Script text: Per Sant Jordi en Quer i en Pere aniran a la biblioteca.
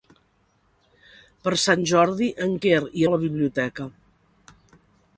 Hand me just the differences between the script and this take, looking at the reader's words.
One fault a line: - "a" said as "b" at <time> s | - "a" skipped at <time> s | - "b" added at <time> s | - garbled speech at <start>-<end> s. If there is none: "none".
- "en Pere aniran" skipped at 3.1 s